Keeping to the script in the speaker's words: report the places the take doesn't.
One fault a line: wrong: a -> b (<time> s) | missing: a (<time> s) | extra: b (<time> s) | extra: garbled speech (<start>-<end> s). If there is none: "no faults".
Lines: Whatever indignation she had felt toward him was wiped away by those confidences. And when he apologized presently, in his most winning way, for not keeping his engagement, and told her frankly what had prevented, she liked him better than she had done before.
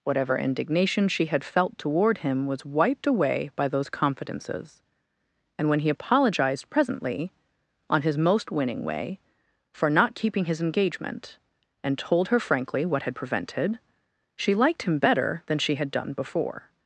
wrong: in -> on (7.9 s)